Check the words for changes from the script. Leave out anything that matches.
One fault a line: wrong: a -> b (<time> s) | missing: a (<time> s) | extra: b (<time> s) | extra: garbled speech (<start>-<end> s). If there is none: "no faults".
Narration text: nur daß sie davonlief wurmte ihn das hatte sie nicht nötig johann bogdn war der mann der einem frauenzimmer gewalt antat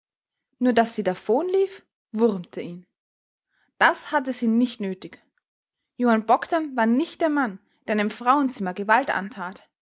extra: nicht (6.9 s)